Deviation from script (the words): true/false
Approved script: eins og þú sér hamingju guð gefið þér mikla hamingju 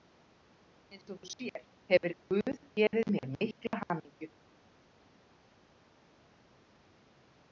true